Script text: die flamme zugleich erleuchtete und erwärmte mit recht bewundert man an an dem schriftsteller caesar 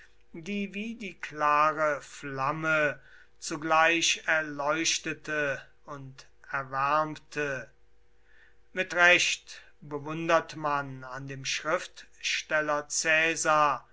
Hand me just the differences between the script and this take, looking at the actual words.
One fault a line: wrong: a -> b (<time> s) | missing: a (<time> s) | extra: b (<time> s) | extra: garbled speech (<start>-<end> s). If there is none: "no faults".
extra: wie die klare (0.7 s)
missing: an (11.3 s)